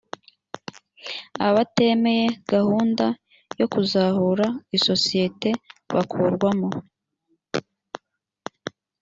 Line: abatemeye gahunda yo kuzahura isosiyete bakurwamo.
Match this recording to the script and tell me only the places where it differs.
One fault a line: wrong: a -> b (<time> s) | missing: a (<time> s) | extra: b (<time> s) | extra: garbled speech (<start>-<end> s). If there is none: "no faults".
no faults